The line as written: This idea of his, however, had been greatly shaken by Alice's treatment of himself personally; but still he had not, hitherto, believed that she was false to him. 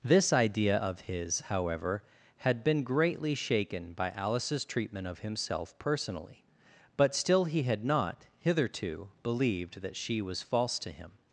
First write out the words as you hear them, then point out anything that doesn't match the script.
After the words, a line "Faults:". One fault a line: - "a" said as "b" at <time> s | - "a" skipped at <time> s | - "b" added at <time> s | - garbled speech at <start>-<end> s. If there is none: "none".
This idea of his, however, had been greatly shaken by Alice's treatment of himself personally; but still he had not, hitherto, believed that she was false to him.
Faults:
none